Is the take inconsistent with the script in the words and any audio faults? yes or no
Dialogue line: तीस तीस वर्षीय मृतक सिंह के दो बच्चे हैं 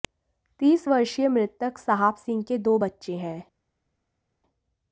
yes